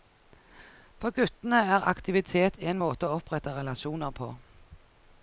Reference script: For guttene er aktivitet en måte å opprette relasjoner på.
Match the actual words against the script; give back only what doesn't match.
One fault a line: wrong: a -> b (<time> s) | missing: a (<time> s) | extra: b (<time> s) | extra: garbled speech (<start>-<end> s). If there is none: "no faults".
no faults